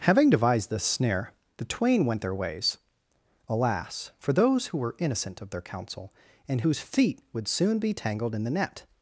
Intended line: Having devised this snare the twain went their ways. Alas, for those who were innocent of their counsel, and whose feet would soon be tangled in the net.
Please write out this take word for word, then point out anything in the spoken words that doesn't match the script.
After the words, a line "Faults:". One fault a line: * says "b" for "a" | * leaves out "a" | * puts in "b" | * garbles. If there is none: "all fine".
Having devised this snare the twain went their ways. Alas, for those who were innocent of their counsel, and whose feet would soon be tangled in the net.
Faults:
all fine